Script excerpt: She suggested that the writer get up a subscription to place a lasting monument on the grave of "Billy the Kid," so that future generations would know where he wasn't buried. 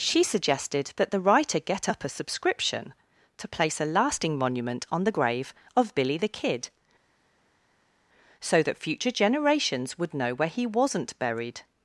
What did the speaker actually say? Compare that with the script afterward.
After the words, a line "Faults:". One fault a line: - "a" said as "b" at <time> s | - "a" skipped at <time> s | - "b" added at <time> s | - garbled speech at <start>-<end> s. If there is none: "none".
She suggested that the writer get up a subscription to place a lasting monument on the grave of "Billy the Kid," so that future generations would know where he wasn't buried.
Faults:
none